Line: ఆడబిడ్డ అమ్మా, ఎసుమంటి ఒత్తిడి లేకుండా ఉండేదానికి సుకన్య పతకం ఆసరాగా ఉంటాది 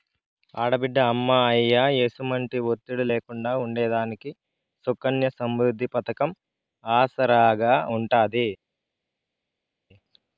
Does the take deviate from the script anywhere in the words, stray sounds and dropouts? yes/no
yes